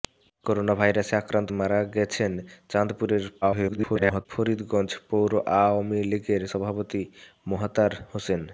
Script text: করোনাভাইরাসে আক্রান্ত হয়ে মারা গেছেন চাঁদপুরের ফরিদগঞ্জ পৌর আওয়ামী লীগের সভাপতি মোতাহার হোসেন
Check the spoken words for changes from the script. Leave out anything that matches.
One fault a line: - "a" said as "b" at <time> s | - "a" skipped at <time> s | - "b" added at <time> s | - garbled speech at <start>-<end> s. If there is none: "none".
- "হয়ে" skipped at 1.5 s
- garbled speech at 3.4-4.3 s